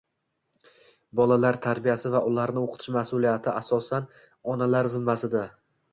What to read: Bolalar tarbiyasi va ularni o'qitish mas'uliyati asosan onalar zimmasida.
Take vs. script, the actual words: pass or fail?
pass